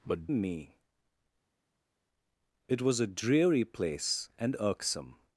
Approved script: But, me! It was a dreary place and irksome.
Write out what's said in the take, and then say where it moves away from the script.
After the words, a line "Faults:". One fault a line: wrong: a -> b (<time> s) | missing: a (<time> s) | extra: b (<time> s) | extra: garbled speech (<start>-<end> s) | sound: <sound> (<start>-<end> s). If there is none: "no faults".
But, me! It was a dreary place and irksome.
Faults:
no faults